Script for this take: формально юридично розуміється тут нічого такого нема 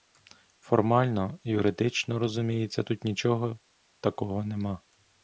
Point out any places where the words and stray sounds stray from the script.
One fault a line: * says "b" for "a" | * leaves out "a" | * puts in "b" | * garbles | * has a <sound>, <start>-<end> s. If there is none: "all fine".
all fine